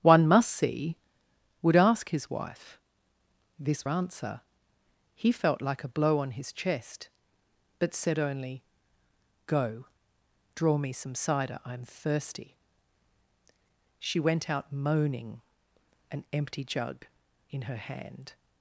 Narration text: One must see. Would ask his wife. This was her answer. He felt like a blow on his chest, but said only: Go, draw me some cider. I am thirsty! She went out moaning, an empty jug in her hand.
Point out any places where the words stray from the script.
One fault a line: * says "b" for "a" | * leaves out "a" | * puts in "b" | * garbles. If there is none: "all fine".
* leaves out "was her"